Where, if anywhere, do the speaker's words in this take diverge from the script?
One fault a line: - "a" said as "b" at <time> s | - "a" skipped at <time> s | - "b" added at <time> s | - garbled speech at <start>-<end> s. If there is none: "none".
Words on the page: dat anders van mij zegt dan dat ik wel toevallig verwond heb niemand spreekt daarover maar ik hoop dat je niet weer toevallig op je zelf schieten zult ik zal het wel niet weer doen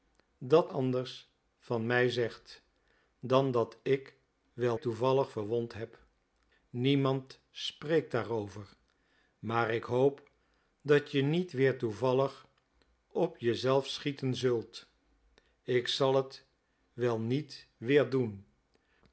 none